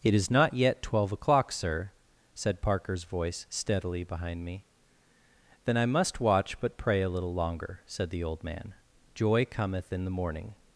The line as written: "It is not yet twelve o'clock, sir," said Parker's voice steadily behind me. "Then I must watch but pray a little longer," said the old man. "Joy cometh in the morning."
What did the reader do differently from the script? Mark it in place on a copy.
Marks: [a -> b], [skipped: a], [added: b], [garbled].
"It is not yet twelve o'clock, sir," said Parker's voice steadily behind me. "Then I must watch but pray a little longer," said the old man. "Joy cometh in the morning."